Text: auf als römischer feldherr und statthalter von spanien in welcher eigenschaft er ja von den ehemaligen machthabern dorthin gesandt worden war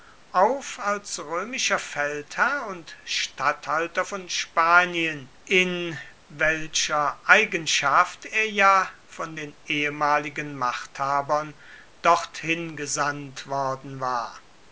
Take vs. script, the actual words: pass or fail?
pass